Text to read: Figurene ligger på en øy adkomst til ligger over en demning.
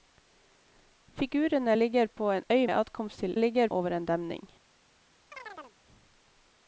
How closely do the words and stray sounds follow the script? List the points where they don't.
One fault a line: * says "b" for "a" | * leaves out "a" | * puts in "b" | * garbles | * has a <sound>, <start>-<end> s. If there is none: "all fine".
* has a chirp, 5.3-5.8 s